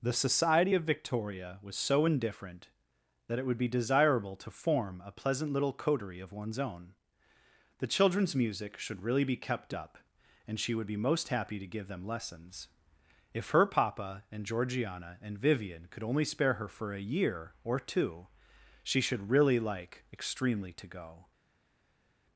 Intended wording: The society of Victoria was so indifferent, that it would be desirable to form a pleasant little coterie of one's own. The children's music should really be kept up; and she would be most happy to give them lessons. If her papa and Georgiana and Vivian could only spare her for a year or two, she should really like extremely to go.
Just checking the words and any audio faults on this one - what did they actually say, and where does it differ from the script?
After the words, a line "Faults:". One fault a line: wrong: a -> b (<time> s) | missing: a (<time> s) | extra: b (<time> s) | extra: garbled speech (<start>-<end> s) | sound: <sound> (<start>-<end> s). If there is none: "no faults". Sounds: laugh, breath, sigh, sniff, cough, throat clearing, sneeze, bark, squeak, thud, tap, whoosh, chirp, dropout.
The society of Victoria was so indifferent, that it would be desirable to form a pleasant little coterie of one's own. The children's music should really be kept up; and she would be most happy to give them lessons. If her papa and Georgiana and Vivian could only spare her for a year or two, she should really like extremely to go.
Faults:
no faults